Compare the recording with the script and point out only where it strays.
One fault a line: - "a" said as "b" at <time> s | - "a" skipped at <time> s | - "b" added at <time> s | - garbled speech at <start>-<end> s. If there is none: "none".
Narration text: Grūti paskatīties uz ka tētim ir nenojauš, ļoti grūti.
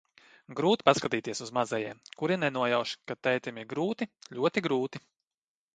- "mazajiem kuri nenojauš" added at 1.6 s
- "nenojauš" said as "grūti" at 3.8 s